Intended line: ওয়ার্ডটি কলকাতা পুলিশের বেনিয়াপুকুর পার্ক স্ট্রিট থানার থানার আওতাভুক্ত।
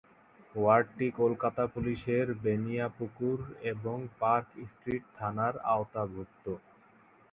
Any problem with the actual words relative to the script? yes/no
yes